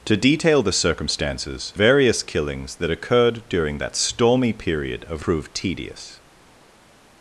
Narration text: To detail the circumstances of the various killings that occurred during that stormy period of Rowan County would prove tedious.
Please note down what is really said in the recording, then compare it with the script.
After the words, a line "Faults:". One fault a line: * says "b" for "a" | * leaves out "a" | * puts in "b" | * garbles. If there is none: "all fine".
To detail the circumstances various killings that occurred during that stormy period of Prove tedious.
Faults:
* leaves out "of the"
* leaves out "Rowan County would"